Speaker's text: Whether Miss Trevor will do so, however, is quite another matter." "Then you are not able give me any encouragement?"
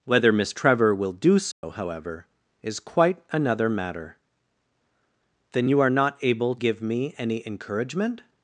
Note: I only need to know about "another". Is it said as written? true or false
true